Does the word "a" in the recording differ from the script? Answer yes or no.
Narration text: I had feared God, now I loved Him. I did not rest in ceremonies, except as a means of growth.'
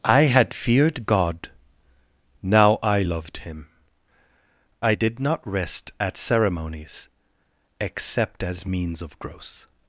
yes